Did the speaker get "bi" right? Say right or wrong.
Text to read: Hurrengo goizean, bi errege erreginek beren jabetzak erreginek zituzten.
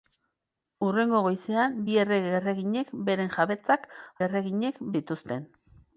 right